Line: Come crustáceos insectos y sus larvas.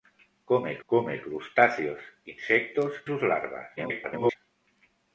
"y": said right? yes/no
no